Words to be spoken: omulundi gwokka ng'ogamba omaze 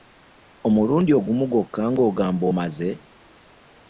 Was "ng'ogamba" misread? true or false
false